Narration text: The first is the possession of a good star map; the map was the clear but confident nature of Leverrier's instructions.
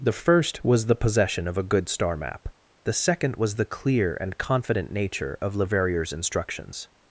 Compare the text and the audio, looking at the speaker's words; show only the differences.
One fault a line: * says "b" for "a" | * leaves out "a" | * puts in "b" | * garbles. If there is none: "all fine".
* says "was" for "is"
* says "second" for "map"
* says "and" for "but"